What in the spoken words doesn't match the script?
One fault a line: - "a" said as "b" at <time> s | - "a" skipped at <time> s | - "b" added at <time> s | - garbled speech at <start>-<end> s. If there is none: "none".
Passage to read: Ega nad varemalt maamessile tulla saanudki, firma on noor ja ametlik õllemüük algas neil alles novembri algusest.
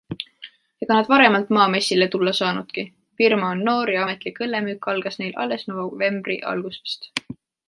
none